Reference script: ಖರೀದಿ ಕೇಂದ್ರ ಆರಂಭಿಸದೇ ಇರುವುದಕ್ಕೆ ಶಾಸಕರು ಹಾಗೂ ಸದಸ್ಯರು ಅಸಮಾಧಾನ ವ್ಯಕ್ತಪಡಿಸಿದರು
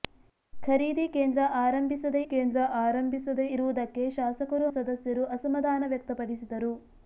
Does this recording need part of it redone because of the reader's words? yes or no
yes